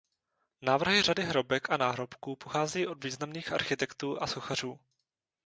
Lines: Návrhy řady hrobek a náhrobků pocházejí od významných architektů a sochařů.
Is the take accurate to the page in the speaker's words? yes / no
yes